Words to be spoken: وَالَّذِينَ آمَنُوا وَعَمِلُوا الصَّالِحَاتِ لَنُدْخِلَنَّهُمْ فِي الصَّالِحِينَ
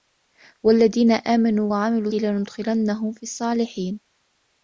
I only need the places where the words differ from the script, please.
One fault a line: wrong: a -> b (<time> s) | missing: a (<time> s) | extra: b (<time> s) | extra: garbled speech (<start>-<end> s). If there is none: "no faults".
missing: الصَّالِحَاتِ (2.1 s)